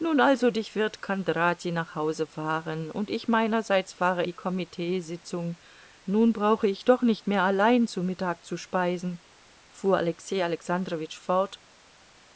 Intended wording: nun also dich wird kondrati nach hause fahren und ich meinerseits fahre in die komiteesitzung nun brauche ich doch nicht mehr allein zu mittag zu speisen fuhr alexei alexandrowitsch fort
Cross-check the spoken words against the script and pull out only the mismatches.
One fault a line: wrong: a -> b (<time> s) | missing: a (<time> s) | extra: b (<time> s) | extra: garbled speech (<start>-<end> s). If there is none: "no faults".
missing: in (4.2 s)